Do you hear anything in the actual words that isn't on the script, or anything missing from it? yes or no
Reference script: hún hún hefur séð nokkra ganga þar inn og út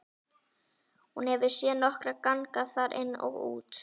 yes